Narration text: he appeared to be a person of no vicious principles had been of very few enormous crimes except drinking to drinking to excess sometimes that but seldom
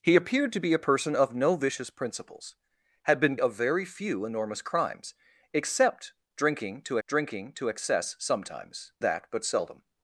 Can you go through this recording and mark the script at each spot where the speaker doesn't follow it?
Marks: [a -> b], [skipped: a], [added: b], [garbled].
he appeared to be a person of no vicious principles had been of very few enormous crimes except drinking to drinking to excess sometimes that but seldom